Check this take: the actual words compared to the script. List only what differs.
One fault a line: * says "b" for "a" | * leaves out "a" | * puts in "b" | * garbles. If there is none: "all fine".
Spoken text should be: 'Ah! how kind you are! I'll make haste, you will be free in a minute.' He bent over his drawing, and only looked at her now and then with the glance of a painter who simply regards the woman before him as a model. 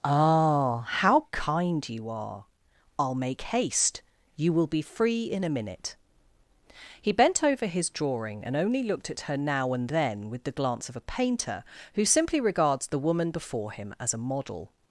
all fine